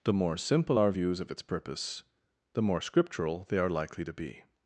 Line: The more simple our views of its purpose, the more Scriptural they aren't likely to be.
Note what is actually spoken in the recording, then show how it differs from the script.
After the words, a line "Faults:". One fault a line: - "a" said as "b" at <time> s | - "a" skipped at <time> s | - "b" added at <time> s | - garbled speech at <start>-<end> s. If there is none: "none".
The more simple our views of its purpose, the more Scriptural they are likely to be.
Faults:
- "aren't" said as "are" at 3.6 s